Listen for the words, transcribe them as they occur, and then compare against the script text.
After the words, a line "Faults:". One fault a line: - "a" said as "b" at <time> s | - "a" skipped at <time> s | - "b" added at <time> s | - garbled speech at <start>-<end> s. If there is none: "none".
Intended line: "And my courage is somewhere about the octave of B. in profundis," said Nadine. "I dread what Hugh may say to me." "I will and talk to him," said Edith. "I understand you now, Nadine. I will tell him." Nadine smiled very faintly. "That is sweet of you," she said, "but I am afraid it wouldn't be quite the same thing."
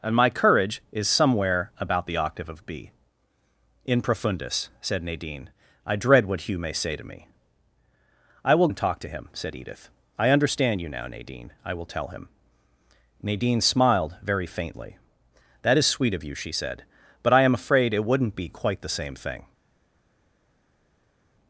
"And my courage is somewhere about the octave of B. in profundis," said Nadine. "I dread what Hugh may say to me." "I will and talk to him," said Edith. "I understand you now, Nadine. I will tell him." Nadine smiled very faintly. "That is sweet of you," she said, "but I am afraid it wouldn't be quite the same thing."
Faults:
none